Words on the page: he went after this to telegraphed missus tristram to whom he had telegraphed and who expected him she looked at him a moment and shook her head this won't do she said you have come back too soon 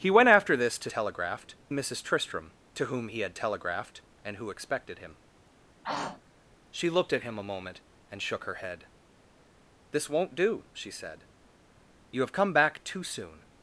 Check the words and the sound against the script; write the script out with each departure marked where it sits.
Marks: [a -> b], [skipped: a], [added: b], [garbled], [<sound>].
he went after this to telegraphed missus tristram to whom he had telegraphed and who expected him [throat clearing] she looked at him a moment and shook her head this won't do she said you have come back too soon